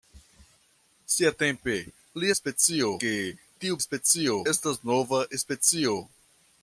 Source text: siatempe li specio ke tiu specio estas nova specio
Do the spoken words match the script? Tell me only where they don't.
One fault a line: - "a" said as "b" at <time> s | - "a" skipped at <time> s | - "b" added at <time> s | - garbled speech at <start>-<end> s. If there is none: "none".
none